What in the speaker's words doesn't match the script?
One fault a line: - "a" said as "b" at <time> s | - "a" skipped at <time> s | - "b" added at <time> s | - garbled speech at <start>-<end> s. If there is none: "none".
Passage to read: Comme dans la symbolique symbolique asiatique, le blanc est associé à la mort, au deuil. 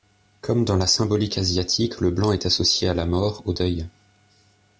- "symbolique" skipped at 1.4 s